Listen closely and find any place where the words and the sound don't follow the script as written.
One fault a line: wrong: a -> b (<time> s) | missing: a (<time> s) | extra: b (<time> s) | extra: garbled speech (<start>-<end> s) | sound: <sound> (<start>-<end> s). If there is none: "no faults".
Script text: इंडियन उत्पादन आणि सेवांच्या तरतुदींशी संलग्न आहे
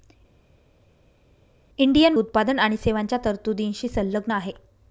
no faults